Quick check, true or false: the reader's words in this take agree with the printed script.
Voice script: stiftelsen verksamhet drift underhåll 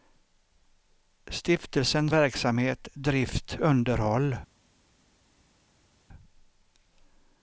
true